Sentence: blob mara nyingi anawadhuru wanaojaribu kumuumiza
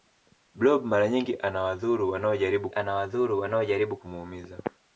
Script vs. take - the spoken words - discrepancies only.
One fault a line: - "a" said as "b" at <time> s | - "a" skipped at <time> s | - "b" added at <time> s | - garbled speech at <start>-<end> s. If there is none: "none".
- "anawadhuru wanaojaribu" added at 2.7 s